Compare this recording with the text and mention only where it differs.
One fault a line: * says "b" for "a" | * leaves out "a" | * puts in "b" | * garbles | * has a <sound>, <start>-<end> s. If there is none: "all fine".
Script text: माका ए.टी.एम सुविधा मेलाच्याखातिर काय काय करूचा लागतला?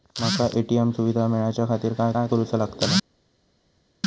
all fine